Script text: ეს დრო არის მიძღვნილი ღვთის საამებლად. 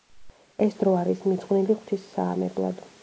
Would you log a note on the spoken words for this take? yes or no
no